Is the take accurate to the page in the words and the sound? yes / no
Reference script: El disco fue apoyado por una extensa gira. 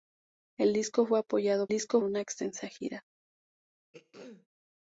no